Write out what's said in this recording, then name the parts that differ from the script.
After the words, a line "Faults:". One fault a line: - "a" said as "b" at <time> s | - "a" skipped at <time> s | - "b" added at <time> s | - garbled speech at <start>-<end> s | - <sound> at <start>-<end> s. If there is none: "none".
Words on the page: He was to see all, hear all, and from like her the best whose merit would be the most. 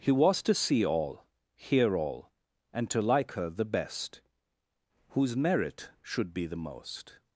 He was to see all, hear all, and to like her the best whose merit should be the most.
Faults:
- "from" said as "to" at 2.9 s
- "would" said as "should" at 6.0 s